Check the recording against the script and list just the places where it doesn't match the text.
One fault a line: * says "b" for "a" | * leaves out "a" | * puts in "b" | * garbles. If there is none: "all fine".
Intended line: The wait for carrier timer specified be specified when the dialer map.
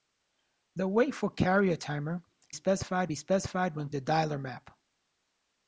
all fine